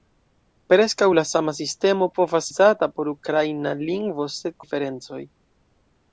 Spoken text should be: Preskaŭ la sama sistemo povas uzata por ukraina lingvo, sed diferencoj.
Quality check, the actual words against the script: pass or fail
pass